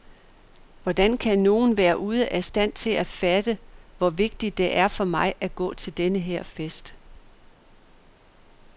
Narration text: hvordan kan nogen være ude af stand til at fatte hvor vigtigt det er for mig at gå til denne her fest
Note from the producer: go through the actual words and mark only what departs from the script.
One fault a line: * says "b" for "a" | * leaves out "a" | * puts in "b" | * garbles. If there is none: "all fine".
all fine